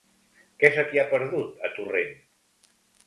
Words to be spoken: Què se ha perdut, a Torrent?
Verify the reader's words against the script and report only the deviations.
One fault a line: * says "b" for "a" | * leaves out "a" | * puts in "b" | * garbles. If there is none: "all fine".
* puts in "t'hi"